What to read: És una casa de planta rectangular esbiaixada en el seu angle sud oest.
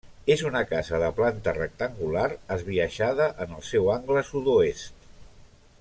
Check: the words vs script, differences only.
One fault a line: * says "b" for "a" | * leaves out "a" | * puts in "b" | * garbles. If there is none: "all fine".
all fine